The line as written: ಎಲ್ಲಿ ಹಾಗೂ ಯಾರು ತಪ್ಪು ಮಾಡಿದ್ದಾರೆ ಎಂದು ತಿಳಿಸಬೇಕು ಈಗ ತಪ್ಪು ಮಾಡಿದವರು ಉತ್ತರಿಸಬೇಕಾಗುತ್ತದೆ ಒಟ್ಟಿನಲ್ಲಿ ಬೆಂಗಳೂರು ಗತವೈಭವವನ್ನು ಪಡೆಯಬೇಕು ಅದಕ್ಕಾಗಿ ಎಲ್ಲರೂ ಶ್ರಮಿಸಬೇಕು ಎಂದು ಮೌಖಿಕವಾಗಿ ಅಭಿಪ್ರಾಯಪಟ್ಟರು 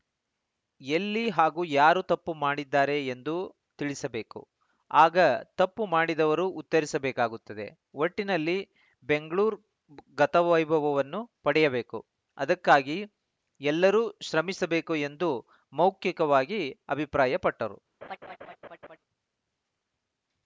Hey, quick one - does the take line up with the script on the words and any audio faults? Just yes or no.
no